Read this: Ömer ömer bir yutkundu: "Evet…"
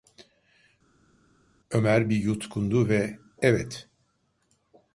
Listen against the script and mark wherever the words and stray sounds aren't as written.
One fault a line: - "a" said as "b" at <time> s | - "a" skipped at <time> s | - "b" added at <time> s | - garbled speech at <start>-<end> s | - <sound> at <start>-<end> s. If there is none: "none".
- "ömer" skipped at 2.1 s
- "ve" added at 2.9 s